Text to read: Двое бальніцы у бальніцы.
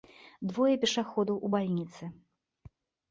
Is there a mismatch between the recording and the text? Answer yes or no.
yes